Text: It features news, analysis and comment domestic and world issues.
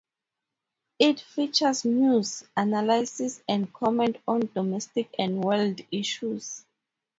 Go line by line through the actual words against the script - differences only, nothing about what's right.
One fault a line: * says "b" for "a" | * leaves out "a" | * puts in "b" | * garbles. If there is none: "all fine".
* puts in "on"